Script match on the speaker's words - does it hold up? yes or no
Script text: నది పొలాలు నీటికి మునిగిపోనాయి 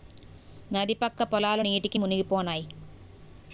no